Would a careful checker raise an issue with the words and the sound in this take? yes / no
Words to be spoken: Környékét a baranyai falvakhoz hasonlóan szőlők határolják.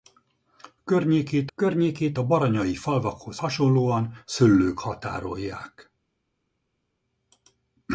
yes